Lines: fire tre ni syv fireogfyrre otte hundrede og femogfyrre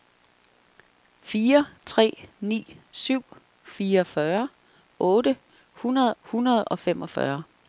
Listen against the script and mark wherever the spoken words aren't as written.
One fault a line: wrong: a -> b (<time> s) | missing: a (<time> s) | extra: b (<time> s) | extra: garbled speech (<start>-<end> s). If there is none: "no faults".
extra: hundrede (6.2 s)